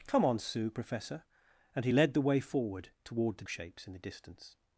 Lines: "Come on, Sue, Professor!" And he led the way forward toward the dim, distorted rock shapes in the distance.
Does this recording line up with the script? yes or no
no